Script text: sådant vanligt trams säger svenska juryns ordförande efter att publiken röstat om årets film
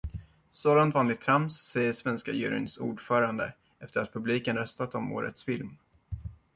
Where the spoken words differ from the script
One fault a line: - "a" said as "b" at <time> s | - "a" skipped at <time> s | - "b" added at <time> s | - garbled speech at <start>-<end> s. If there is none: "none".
none